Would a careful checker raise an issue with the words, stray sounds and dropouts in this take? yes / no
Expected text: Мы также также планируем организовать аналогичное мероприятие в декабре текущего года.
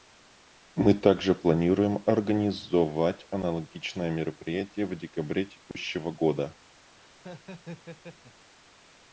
yes